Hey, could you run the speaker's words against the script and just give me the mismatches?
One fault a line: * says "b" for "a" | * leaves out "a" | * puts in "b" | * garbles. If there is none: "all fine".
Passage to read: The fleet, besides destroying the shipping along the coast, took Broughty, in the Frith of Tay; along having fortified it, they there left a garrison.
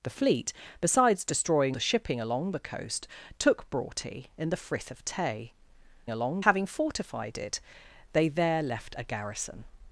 all fine